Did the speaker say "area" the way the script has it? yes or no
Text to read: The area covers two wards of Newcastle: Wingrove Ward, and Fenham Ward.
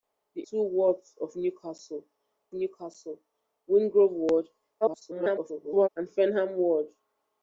no